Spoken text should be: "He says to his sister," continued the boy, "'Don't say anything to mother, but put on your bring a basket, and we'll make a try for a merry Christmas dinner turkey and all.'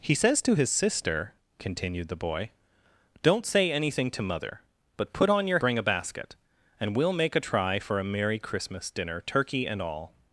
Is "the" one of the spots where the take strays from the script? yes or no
no